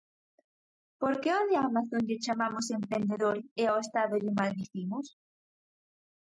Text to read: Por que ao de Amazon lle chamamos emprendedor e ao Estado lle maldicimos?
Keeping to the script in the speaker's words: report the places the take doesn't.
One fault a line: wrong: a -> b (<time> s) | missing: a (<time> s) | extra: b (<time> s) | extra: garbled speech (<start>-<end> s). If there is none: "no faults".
no faults